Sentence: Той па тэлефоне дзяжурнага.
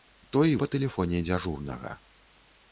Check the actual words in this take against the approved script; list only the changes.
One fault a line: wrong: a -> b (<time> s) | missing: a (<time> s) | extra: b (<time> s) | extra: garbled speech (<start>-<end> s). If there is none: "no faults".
no faults